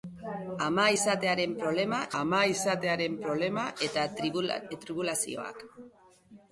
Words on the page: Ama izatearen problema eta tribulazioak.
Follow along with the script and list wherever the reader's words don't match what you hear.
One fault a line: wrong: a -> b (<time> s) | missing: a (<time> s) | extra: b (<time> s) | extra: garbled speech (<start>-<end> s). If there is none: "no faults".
extra: ama izatearen problema (2.2 s)